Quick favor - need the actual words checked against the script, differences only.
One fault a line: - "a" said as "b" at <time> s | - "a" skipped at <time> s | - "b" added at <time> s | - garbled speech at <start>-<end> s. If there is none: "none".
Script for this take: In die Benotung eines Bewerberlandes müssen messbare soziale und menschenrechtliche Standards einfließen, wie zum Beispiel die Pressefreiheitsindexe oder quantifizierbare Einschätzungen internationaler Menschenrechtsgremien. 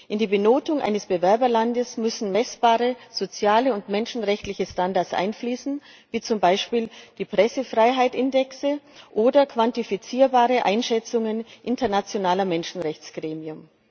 none